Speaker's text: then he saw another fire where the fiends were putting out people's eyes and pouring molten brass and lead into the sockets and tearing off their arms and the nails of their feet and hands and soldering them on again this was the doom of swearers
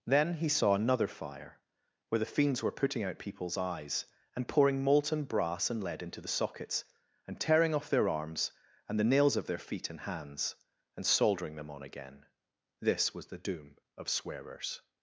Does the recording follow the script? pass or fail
pass